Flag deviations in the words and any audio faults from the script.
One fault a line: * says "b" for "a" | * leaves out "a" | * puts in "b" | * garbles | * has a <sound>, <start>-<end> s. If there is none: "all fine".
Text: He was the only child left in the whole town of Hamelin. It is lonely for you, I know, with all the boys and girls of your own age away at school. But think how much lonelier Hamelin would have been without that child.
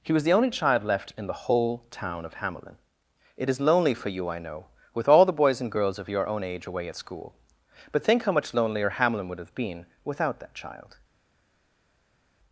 all fine